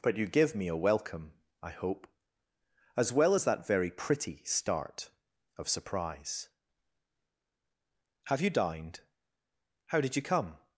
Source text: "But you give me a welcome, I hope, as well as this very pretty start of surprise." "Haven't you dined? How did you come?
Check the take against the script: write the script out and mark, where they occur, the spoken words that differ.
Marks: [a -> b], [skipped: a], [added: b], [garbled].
"But you give me a welcome, I hope, as well as [this -> that] very pretty start of surprise." ["Haven't -> Have] you dined? How did you come?